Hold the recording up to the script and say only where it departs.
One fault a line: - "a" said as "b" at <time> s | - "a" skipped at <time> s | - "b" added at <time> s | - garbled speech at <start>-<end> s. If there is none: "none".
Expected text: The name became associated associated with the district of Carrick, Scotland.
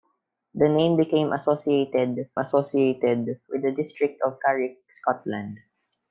none